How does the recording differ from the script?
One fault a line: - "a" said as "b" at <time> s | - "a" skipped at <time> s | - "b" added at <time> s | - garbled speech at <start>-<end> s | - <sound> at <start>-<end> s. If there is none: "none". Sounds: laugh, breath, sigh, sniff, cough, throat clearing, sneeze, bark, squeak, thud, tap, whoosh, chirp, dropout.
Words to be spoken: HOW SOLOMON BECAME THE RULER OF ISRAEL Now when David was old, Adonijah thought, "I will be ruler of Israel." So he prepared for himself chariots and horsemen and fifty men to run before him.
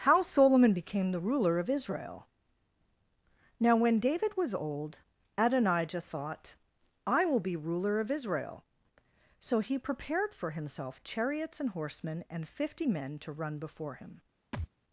- thud at 14.5-14.7 s